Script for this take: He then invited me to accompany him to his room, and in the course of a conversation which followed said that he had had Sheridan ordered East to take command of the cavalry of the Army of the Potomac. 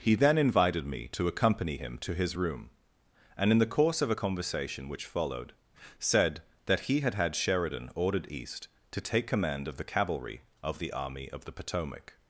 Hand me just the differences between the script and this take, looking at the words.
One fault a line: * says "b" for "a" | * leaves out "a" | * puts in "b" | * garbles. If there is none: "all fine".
all fine